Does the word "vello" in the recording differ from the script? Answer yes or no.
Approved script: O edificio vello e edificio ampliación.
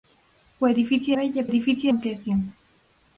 no